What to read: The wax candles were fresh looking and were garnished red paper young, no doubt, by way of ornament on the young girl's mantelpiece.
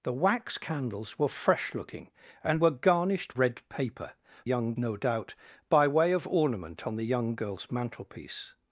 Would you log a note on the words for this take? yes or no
no